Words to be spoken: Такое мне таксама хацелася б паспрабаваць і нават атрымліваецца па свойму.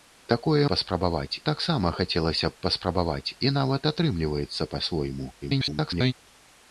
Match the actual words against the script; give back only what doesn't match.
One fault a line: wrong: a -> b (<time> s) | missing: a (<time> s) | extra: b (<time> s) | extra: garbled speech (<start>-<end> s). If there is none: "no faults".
wrong: мне -> паспрабаваць (0.7 s)
extra: garbled speech (5.4-6.1 s)